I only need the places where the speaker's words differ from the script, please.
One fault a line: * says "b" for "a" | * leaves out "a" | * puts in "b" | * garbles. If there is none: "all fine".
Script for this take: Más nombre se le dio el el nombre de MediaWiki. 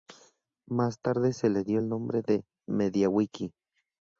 * says "tarde" for "nombre"
* leaves out "el"